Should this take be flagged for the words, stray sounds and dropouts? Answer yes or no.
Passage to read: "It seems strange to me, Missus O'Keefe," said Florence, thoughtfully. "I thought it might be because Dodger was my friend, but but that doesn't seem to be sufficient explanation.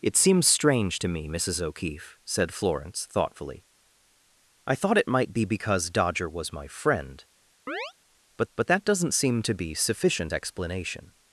yes